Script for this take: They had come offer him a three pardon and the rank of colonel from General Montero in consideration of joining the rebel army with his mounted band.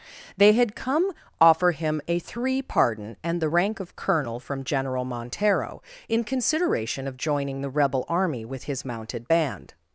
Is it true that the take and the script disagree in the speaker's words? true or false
false